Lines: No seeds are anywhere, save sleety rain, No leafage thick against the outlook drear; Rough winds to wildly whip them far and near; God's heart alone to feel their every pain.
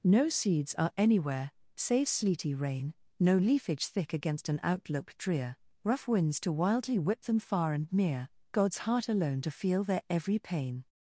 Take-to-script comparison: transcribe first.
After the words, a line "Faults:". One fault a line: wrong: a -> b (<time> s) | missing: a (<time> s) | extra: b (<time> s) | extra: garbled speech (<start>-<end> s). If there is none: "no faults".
No seeds are anywhere, save sleety rain, No leafage thick against an outlook drear; Rough winds to wildly whip them far and near; God's heart alone to feel their every pain.
Faults:
wrong: the -> an (4.5 s)